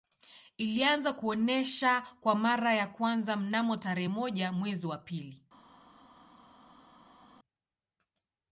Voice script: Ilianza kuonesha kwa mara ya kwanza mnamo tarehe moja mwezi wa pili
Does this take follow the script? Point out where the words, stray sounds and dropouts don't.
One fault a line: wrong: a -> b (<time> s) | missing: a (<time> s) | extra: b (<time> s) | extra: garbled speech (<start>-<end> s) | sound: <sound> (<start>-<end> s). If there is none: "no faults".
no faults